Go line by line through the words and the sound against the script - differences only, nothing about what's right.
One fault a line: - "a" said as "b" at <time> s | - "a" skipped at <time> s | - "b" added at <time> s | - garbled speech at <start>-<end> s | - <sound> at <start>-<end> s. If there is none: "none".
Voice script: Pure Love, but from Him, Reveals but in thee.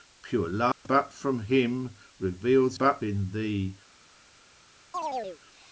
- dropout at 0.7-0.9 s
- chirp at 4.9-5.4 s